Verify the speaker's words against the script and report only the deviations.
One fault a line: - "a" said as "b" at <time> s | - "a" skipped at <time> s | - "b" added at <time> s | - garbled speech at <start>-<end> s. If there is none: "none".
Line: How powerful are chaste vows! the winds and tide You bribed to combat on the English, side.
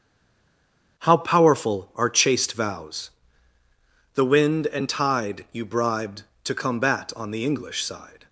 - "winds" said as "wind" at 4.3 s